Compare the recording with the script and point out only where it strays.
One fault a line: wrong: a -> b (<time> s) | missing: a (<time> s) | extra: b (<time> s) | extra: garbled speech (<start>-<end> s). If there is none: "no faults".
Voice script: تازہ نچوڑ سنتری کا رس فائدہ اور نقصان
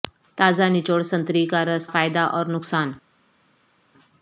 no faults